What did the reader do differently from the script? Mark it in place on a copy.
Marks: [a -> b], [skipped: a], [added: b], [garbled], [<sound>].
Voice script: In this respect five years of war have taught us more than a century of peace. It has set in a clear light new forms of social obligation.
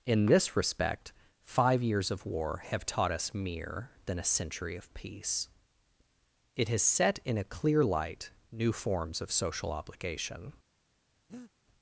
In this respect five years of war have taught us [more -> mere] than a century of peace. It has set in a clear light new forms of social obligation. [breath]